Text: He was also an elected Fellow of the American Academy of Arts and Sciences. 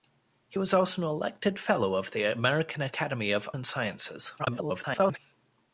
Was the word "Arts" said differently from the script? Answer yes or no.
yes